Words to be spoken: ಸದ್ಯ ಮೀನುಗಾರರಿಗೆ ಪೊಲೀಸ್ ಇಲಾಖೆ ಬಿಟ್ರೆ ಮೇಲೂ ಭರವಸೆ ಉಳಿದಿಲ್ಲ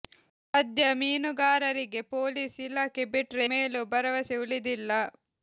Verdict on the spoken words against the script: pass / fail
pass